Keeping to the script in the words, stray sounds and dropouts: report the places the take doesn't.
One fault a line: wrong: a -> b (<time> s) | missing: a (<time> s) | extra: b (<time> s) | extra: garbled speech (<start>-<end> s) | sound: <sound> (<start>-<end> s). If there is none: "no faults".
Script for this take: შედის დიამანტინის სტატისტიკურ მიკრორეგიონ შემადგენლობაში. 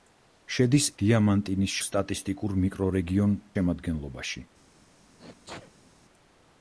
sound: sneeze (5.2-5.9 s)